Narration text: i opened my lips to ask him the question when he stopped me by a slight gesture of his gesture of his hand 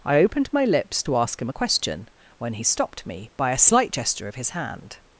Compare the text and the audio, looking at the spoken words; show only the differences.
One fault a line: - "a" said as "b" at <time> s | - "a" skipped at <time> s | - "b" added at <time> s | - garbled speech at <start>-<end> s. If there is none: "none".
- "the" said as "a" at 1.5 s
- "gesture of his" skipped at 4.5 s